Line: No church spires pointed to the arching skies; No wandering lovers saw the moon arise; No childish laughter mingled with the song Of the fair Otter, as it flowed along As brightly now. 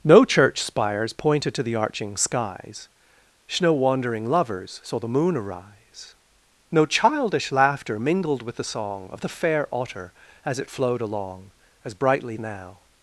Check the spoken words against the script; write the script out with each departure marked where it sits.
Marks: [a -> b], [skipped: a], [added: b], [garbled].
No church spires pointed to the arching skies; No wandering lovers saw the moon arise; No childish laughter mingled with the song Of the fair Otter, as it flowed along As brightly now.